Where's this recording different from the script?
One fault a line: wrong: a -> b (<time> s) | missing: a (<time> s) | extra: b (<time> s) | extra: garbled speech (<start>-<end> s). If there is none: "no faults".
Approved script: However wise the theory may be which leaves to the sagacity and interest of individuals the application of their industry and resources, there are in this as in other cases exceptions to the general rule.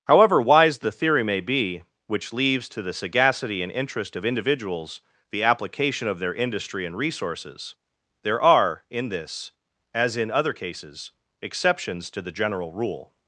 no faults